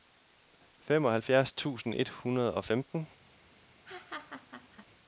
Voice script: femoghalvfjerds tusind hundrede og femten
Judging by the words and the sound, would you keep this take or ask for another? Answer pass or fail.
fail